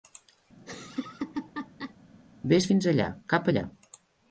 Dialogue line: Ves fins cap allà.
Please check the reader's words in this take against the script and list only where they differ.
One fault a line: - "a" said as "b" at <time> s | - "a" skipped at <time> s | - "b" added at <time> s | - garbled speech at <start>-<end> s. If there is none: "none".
- "allà" added at 2.9 s